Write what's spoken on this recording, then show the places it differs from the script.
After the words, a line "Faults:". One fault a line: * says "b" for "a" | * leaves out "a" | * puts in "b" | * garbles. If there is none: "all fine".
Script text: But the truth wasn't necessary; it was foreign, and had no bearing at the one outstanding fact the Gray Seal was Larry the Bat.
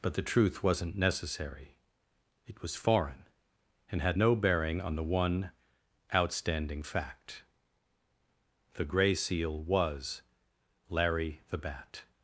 But the truth wasn't necessary; it was foreign, and had no bearing on the one outstanding fact the Gray Seal was Larry the Bat.
Faults:
* says "on" for "at"